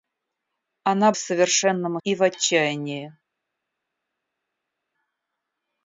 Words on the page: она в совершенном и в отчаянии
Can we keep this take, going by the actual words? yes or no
yes